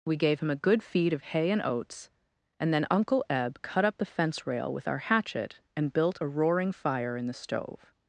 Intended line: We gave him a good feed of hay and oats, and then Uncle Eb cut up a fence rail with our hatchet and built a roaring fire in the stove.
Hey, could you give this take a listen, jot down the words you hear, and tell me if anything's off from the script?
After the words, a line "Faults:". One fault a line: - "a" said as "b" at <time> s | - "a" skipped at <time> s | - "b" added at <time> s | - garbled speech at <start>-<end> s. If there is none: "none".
We gave him a good feed of hay and oats, and then Uncle Eb cut up the fence rail with our hatchet and built a roaring fire in the stove.
Faults:
- "a" said as "the" at 4.0 s